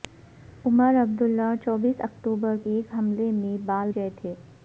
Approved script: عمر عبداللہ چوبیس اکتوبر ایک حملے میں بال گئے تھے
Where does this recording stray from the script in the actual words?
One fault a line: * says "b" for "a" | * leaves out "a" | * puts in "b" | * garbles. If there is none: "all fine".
all fine